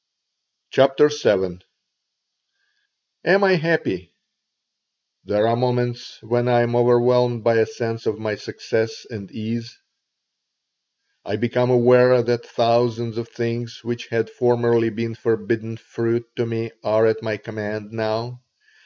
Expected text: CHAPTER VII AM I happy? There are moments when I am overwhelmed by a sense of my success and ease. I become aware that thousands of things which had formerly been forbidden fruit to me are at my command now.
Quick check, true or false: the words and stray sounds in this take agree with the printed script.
true